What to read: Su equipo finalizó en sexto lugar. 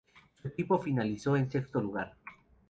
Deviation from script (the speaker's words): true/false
false